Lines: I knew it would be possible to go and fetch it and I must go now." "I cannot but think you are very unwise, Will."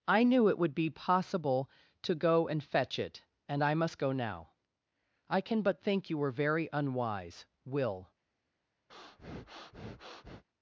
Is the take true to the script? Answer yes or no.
no